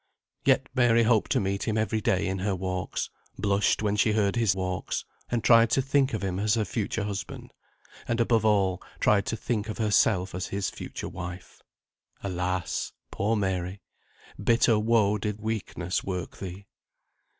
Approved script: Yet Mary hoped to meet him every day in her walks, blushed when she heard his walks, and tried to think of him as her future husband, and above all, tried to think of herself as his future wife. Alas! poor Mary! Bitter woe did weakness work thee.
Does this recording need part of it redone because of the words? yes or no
no